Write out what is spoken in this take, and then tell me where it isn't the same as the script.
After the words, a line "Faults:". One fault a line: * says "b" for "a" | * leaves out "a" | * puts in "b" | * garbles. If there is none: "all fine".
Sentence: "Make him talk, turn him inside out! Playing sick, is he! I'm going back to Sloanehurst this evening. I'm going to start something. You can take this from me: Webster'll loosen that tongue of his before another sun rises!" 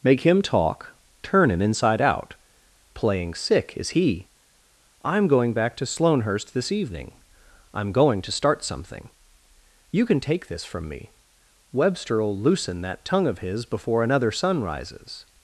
"Make him talk, turn him inside out! Playing sick, is he! I'm going back to Sloanehurst this evening. I'm going to start something. You can take this from me: Webster'll loosen that tongue of his before another sun rises!"
Faults:
all fine